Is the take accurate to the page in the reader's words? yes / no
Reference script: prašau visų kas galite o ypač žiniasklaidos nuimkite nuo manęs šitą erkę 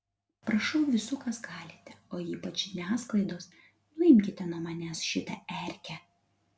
yes